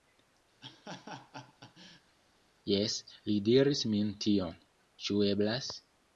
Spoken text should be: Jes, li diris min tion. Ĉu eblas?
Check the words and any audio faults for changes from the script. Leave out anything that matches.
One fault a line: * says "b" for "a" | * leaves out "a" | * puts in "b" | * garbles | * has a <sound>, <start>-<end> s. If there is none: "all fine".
* has a laugh, 0.6-2.2 s